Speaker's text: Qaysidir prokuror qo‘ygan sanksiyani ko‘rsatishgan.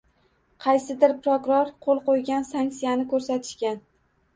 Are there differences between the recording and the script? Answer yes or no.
yes